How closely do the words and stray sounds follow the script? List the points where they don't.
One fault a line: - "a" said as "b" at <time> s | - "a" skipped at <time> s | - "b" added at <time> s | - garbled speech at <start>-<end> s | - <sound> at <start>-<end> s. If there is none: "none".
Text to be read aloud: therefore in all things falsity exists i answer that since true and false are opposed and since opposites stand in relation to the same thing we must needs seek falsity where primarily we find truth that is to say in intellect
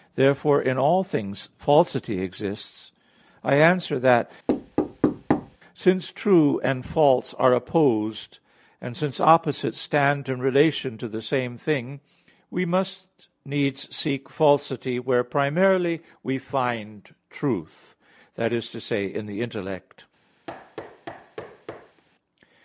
- thud at 4.5-5.6 s
- "the" added at 19.3 s
- thud at 20.5-22.0 s